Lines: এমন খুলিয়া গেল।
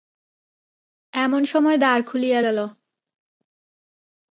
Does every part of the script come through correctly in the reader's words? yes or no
no